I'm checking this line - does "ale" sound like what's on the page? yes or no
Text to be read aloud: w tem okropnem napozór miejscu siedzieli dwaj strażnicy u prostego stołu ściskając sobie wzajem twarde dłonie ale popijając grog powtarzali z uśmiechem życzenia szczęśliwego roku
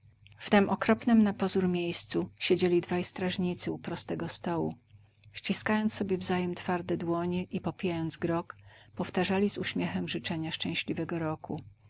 no